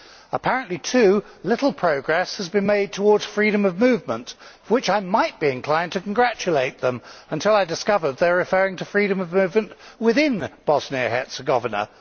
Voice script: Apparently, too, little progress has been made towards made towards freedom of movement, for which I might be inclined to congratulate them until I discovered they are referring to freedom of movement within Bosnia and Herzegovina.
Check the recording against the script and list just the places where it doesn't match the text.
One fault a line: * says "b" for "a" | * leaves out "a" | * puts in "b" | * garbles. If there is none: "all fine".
* leaves out "made towards"